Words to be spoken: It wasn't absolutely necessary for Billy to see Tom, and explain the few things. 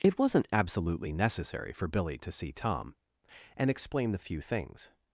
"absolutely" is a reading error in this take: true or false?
false